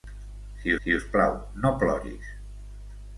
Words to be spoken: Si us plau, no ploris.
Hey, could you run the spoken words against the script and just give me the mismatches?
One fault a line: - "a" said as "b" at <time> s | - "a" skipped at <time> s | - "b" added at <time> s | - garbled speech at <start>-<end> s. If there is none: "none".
- "si" added at 0.8 s